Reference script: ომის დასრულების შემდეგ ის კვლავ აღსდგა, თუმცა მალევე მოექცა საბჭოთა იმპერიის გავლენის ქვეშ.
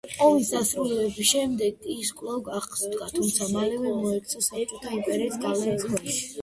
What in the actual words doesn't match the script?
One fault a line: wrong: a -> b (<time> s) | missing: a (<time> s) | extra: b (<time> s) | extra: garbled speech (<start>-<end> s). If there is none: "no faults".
no faults